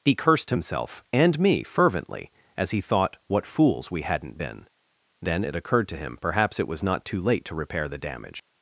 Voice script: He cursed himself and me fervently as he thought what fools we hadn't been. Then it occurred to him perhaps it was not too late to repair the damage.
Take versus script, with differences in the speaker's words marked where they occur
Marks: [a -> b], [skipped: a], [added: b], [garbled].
He cursed himself and me fervently as he thought what fools we hadn't been. Then it occurred to him perhaps it was not too late to repair the damage.